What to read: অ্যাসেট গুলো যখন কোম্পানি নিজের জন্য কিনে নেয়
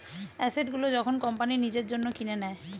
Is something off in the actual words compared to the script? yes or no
no